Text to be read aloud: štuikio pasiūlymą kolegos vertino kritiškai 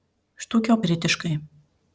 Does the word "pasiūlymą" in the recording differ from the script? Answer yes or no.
yes